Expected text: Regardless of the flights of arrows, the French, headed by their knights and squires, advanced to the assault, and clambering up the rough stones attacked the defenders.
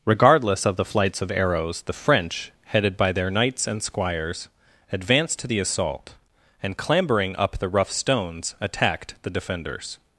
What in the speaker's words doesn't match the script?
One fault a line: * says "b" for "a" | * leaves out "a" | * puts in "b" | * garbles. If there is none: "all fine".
all fine